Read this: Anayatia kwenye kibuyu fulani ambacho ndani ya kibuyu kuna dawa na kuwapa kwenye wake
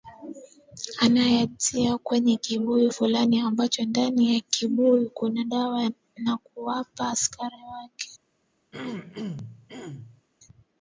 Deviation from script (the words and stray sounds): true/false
true